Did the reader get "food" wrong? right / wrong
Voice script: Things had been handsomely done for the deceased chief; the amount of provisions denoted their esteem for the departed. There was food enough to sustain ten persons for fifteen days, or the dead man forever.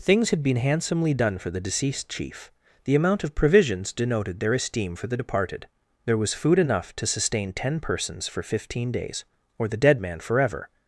right